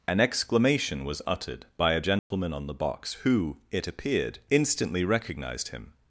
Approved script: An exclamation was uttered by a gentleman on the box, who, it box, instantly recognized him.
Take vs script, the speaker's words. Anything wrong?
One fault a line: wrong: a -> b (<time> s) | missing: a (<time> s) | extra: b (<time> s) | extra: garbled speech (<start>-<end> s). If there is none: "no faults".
wrong: box -> appeared (3.9 s)